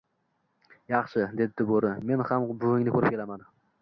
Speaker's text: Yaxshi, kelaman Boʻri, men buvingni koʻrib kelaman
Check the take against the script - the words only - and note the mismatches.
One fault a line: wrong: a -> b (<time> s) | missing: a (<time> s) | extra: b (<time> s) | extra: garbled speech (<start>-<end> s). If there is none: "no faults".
wrong: kelaman -> debdi (1.4 s)
extra: ham (2.3 s)